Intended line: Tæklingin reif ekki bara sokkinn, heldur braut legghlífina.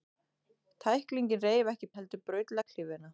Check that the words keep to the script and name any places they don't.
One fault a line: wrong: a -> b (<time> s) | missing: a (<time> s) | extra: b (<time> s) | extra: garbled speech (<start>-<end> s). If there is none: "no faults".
missing: bara sokkinn (1.9 s)